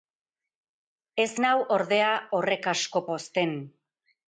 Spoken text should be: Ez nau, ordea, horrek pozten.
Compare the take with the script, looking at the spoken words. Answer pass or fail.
fail